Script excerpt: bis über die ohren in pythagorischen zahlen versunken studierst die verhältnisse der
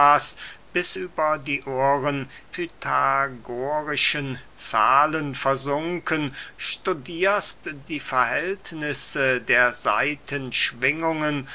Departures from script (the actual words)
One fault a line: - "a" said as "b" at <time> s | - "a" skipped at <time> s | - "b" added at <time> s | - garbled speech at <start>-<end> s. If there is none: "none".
- "in" skipped at 2.3 s